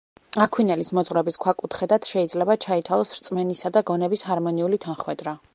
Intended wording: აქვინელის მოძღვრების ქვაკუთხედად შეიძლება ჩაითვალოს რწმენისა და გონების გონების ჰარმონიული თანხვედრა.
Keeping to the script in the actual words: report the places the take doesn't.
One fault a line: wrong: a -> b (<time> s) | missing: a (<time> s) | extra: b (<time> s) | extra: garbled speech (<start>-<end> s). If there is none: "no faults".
missing: გონების (4.3 s)